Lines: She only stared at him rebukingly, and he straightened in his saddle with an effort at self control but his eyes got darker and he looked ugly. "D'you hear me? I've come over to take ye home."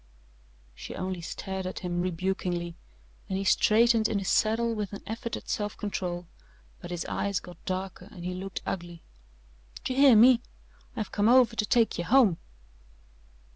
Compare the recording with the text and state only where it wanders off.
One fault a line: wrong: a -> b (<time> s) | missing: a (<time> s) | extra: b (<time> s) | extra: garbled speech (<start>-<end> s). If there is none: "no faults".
no faults